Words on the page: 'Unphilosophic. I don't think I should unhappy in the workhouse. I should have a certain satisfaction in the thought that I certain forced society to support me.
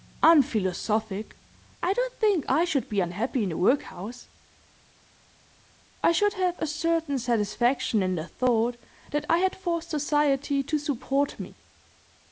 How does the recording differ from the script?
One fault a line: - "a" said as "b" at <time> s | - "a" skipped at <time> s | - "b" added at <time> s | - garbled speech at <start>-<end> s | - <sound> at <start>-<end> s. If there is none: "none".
- "be" added at 2.9 s
- "certain" said as "had" at 9.4 s